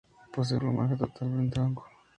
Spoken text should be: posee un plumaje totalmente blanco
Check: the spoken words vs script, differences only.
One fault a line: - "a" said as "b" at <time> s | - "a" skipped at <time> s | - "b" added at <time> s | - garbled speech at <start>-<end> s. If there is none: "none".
- "un" skipped at 0.6 s